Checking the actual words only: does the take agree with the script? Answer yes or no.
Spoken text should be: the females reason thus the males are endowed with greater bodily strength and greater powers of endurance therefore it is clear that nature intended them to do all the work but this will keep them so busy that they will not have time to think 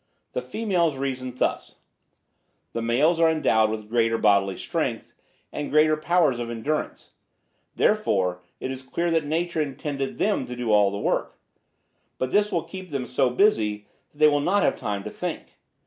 yes